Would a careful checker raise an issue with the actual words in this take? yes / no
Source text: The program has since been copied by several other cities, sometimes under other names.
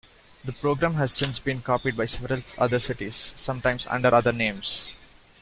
no